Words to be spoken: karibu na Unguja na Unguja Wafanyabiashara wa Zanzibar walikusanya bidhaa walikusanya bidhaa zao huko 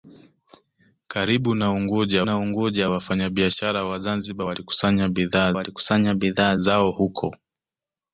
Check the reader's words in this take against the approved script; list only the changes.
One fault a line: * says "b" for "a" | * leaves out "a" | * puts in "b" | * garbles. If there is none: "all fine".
all fine